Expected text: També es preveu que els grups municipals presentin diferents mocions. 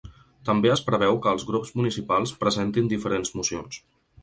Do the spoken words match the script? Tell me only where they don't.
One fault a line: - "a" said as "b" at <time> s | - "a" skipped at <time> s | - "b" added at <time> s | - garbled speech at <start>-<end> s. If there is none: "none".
none